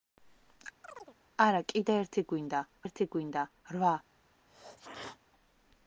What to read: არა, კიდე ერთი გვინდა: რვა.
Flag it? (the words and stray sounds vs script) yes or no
yes